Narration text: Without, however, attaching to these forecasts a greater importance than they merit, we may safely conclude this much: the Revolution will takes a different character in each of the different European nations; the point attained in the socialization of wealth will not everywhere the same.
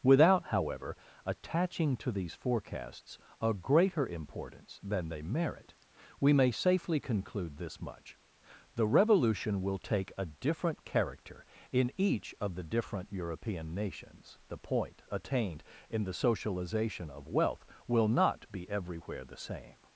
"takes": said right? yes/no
no